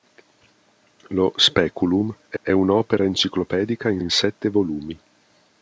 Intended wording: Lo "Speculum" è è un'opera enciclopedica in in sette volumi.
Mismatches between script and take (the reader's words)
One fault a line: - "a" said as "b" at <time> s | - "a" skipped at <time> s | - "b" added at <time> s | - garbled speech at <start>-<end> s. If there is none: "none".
none